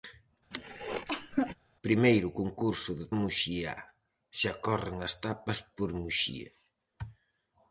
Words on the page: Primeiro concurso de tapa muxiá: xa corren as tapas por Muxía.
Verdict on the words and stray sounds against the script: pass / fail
fail